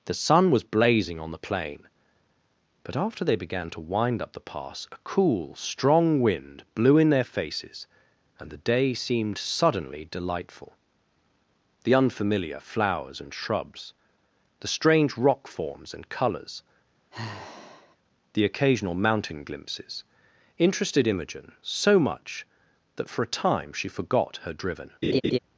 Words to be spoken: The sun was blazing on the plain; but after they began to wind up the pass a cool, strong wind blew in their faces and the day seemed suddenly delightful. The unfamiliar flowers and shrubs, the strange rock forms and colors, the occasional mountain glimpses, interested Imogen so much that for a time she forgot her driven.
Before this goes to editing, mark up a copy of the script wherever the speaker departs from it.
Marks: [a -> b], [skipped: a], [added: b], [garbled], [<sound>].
The sun was blazing on the plain; but after they began to wind up the pass a cool, strong wind blew in their faces and the day seemed suddenly delightful. The unfamiliar flowers and shrubs, the strange rock forms and colors, [sigh] the occasional mountain glimpses, interested Imogen so much that for a time she forgot her driven. [laugh]